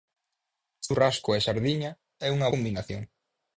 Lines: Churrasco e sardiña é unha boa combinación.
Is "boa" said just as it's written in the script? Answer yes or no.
no